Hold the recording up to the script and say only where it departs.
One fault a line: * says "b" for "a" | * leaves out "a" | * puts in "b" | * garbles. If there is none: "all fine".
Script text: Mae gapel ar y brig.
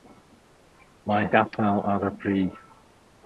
all fine